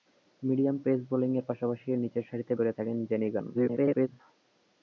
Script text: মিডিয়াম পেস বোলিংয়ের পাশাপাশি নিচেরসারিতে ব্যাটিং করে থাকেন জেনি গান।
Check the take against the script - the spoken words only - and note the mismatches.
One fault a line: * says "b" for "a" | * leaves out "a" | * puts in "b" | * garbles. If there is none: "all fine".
* leaves out "ব্যাটিং"
* garbles